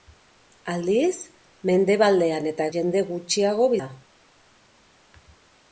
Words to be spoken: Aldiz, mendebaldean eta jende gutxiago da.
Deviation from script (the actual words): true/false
false